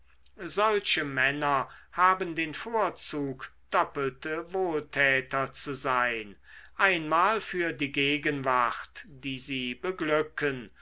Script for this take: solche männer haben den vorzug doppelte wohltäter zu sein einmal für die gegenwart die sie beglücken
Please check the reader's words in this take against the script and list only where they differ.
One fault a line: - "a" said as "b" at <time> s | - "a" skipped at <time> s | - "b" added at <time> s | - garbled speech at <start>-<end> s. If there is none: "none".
none